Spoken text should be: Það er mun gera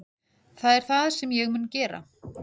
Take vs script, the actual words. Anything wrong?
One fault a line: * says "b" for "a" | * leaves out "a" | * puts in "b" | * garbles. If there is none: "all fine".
* puts in "það sem ég"